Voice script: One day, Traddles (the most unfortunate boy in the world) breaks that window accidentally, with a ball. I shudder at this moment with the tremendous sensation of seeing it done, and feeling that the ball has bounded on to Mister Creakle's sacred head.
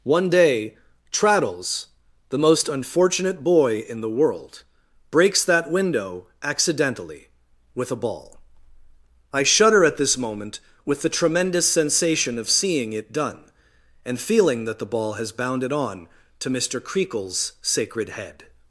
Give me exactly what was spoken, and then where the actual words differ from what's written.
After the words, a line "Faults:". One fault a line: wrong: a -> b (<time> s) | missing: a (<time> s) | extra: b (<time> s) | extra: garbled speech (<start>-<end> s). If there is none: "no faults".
One day, Traddles (the most unfortunate boy in the world) breaks that window accidentally, with a ball. I shudder at this moment with the tremendous sensation of seeing it done, and feeling that the ball has bounded on to Mister Creakle's sacred head.
Faults:
no faults